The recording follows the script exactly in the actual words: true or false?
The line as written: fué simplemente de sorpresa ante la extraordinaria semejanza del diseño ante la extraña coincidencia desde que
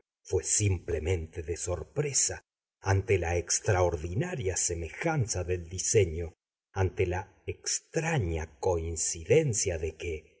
false